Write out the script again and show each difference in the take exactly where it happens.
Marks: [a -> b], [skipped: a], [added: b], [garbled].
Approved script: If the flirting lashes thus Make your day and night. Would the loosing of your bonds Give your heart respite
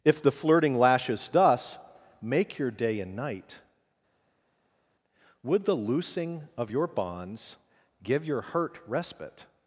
If the flirting lashes thus Make your day and night. Would the loosing of your bonds Give your [heart -> hurt] respite